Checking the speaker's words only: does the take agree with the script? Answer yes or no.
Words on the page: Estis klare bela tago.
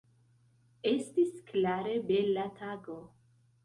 yes